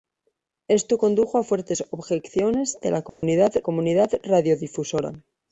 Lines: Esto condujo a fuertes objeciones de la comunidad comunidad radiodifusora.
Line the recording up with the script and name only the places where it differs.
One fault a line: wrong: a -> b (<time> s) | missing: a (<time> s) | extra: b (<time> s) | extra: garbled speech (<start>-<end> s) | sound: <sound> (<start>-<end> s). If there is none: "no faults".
sound: dropout (3.1-3.2 s)